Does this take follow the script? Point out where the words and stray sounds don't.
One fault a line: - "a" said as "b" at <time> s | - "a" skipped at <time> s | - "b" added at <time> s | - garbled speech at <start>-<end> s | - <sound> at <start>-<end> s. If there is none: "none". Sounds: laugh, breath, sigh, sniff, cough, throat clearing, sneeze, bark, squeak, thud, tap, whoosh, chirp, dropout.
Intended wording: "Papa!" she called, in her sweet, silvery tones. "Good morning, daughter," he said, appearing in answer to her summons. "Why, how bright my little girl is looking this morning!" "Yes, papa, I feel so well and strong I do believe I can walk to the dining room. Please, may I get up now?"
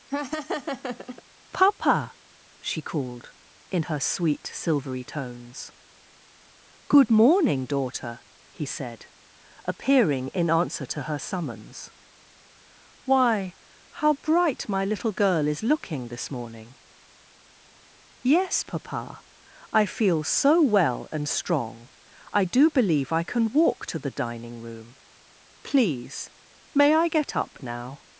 - laugh at 0.1-1.2 s